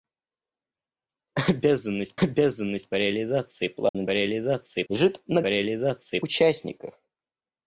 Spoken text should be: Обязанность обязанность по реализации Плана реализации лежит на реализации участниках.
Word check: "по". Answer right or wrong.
right